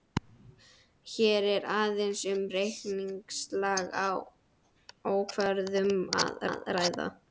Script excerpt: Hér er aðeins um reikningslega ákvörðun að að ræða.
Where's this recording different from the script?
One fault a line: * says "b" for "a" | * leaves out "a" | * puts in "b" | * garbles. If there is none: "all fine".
all fine